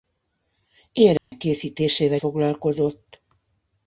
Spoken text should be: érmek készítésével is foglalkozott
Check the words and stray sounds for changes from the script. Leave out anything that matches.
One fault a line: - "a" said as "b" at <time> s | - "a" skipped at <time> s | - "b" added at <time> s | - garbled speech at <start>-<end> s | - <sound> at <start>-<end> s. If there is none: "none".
- dropout at 1.2-1.3 s
- "is" skipped at 2.2 s